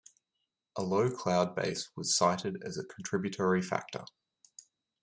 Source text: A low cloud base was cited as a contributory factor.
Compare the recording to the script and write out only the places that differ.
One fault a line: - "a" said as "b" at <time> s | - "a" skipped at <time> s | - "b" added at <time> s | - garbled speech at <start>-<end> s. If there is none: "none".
none